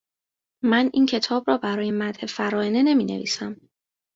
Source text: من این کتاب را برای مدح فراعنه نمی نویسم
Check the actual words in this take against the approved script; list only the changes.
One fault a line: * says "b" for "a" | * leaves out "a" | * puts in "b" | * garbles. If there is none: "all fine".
all fine